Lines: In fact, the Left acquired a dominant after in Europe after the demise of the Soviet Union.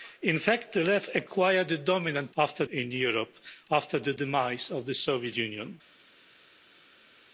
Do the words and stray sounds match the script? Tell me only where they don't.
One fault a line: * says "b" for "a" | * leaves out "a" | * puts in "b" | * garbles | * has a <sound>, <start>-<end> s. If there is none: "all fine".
all fine